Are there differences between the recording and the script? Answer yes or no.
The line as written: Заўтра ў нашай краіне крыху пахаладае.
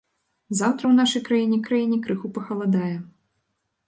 yes